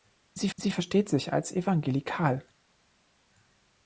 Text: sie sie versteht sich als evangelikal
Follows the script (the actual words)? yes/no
yes